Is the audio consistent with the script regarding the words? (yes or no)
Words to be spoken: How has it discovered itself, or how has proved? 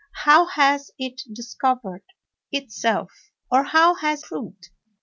yes